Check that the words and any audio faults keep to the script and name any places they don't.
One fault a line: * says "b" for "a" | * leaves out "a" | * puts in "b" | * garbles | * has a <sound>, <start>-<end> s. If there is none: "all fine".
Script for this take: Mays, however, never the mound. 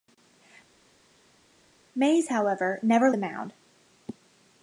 all fine